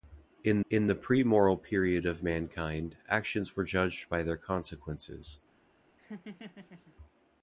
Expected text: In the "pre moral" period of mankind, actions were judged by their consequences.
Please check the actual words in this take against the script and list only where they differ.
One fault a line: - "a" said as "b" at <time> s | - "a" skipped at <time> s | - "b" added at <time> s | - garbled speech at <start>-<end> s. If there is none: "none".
- "in" added at 0.7 s